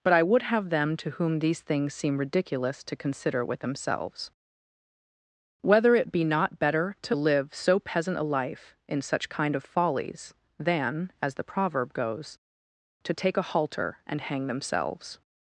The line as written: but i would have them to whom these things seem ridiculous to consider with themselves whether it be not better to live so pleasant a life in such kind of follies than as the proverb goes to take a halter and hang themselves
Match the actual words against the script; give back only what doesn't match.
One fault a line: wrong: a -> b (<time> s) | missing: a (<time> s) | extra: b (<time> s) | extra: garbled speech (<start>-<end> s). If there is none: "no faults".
wrong: pleasant -> peasant (7.8 s)